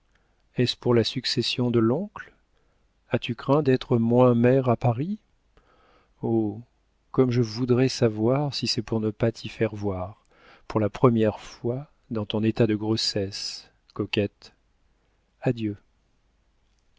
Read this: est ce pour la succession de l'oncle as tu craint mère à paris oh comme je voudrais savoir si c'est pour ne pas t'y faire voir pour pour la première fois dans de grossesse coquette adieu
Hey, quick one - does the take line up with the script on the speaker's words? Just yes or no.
no